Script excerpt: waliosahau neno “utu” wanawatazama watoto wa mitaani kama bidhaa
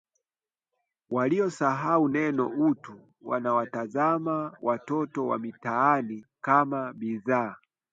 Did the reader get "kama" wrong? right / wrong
right